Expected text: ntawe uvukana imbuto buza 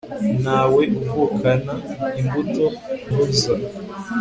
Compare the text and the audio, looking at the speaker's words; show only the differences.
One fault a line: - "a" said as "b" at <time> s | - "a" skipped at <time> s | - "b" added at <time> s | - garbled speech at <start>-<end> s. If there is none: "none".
none